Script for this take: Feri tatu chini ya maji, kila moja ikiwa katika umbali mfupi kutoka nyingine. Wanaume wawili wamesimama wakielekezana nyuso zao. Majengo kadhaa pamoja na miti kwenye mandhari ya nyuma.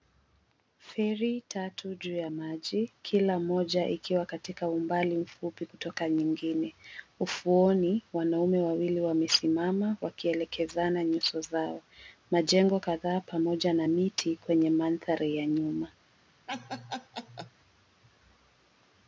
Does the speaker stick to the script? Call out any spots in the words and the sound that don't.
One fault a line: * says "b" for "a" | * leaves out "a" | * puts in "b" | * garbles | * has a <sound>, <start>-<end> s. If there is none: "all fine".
* says "juu" for "chini"
* puts in "Ufuoni"
* has a laugh, 16.5-17.5 s